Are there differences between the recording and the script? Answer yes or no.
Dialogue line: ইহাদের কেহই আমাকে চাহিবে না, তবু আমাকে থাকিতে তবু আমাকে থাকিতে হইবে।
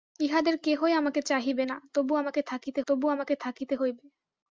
no